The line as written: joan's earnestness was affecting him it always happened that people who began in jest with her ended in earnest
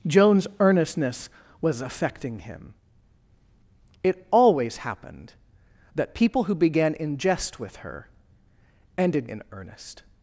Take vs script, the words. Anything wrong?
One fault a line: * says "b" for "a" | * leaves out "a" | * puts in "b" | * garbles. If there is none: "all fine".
all fine